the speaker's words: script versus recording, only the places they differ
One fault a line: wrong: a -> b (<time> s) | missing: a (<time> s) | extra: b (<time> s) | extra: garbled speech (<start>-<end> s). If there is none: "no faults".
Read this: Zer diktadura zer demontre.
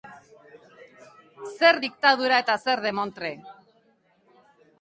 extra: eta (2.4 s)